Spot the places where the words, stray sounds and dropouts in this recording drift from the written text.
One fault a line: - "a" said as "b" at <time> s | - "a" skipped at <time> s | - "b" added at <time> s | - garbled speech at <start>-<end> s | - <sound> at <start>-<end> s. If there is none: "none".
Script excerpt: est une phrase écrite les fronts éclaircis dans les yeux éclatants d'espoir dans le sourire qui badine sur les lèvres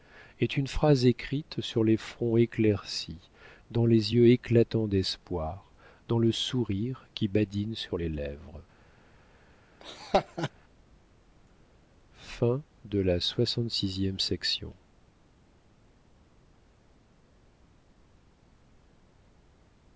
- "sur" added at 1.6 s
- laugh at 9.8-10.5 s